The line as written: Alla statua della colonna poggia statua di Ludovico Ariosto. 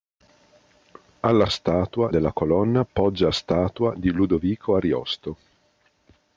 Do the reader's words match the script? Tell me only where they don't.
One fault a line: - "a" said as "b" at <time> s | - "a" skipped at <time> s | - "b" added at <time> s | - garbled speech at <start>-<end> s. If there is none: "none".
none